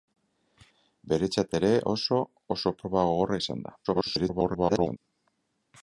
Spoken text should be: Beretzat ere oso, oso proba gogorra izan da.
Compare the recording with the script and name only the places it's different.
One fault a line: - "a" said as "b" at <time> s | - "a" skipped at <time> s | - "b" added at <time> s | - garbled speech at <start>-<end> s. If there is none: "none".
- garbled speech at 3.8-5.0 s